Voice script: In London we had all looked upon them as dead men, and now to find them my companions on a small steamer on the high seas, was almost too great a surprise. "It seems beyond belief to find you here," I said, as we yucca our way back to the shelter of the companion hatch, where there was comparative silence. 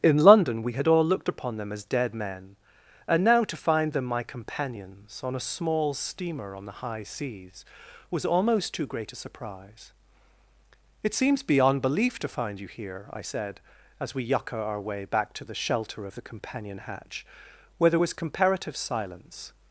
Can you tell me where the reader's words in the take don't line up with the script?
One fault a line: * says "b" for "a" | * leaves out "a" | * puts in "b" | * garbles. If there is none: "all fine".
all fine